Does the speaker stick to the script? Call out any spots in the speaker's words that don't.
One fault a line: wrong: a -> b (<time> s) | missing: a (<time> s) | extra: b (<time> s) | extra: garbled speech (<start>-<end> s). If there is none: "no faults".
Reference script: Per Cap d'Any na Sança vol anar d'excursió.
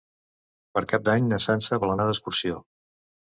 no faults